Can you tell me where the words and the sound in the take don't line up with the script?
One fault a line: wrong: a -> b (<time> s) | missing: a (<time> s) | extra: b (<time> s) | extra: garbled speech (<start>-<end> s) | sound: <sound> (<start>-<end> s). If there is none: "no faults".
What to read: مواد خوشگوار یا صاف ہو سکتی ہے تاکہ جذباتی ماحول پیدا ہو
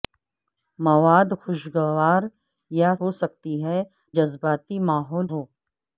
missing: صاف (2.9 s)
missing: تاکہ (3.8 s)
missing: پیدا (5.3 s)